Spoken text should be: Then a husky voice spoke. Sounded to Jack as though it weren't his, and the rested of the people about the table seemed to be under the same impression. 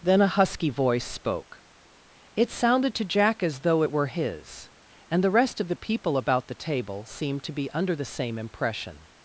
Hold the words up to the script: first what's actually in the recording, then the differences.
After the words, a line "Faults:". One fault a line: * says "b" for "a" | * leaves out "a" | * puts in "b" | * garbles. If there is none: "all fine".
Then a husky voice spoke. It sounded to Jack as though it were his, and the rest of the people about the table seemed to be under the same impression.
Faults:
* puts in "It"
* says "were" for "weren't"
* says "rest" for "rested"